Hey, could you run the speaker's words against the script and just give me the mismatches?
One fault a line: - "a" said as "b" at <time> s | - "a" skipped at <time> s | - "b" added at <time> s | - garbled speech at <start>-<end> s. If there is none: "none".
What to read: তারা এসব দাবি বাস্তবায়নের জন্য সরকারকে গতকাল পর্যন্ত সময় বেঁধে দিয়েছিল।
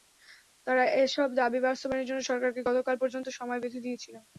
none